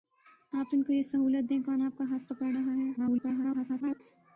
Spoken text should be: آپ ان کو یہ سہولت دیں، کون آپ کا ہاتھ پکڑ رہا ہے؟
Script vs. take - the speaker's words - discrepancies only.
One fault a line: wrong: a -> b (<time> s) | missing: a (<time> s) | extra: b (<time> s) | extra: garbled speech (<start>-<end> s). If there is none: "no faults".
extra: garbled speech (3.0-4.0 s)